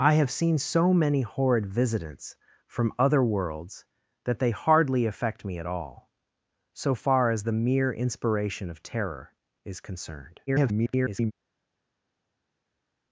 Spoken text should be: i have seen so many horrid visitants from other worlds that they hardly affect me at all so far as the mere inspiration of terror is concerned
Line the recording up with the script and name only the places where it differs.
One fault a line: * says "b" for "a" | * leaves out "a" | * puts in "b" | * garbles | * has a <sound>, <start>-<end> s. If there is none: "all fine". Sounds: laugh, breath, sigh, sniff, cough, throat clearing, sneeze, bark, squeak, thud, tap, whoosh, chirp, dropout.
* garbles